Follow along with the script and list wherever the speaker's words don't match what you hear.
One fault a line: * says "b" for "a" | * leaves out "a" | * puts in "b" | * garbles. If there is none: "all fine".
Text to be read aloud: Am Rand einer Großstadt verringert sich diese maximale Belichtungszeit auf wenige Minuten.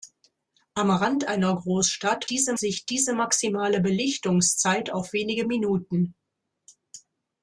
* says "diese" for "verringert"